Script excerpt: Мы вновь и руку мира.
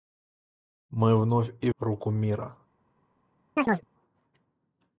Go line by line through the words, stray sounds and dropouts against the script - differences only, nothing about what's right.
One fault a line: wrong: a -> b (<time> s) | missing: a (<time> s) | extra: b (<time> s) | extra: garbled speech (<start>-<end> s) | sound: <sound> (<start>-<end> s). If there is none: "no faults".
sound: chirp (3.6-3.9 s)